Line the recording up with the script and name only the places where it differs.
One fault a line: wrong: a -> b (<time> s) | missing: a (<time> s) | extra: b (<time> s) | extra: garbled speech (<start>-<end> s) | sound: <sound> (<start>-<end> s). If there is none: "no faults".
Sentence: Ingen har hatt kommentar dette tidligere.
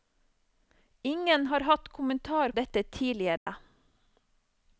sound: dropout (3.4-3.5 s)